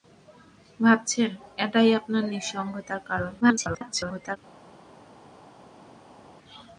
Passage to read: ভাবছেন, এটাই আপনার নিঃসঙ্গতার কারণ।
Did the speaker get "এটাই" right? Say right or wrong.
right